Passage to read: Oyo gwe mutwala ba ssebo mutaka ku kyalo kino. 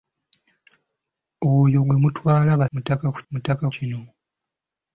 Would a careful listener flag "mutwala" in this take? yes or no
no